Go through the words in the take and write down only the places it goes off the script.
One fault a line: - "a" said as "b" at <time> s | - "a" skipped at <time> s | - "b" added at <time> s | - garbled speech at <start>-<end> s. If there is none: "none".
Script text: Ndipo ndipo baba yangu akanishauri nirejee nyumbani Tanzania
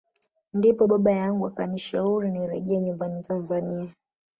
- "ndipo" skipped at 0.9 s